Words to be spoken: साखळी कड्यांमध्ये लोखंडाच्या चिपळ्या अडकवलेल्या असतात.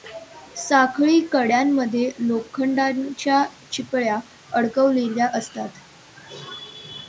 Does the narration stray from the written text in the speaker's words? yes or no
no